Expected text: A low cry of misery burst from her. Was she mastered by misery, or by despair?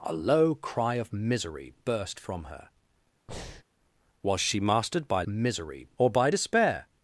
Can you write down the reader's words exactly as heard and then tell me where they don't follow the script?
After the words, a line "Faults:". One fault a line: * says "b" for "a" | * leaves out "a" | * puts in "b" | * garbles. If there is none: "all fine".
A low cry of misery burst from her. Was she mastered by misery, or by despair?
Faults:
all fine